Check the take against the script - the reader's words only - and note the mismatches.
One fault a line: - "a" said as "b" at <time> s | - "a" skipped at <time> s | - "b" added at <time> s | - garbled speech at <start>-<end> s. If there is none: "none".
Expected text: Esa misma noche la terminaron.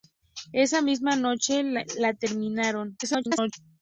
- garbled speech at 3.0-3.5 s